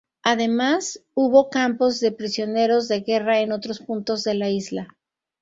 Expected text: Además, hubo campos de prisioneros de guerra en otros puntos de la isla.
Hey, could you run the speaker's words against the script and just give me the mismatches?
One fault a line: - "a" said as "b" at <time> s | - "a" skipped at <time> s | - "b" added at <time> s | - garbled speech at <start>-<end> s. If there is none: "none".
none